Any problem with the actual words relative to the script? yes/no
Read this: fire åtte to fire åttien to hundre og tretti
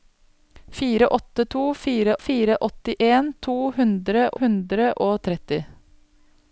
yes